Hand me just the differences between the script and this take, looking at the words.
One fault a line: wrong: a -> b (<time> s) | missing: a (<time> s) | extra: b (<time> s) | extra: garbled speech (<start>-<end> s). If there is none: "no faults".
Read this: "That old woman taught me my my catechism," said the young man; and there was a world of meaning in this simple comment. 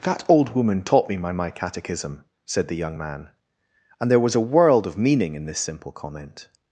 no faults